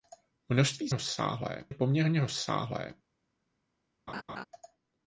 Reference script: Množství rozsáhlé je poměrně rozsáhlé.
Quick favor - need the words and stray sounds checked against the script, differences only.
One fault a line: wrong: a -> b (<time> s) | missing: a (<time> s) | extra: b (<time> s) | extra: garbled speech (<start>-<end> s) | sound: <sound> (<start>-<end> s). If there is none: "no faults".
sound: laugh (4.1-4.5 s)